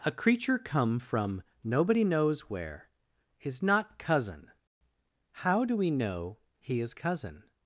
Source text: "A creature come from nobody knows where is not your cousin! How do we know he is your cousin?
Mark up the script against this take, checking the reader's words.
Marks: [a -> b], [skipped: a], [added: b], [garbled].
"A creature come from nobody knows where is not [skipped: your] cousin! How do we know he is [skipped: your] cousin?